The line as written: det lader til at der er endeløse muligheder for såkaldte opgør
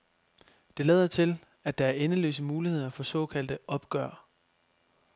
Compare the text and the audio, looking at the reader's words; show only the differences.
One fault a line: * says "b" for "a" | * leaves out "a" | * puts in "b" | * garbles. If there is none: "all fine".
all fine